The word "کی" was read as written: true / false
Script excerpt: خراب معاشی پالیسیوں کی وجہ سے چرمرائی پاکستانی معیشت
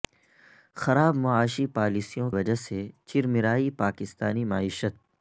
false